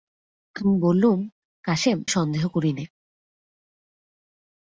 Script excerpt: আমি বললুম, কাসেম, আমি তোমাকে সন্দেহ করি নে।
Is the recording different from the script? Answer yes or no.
yes